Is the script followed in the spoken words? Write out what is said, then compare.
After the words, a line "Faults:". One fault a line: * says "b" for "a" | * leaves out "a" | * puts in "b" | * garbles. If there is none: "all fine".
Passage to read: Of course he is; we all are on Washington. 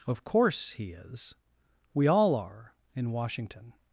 Of course he is; we all are in Washington.
Faults:
* says "in" for "on"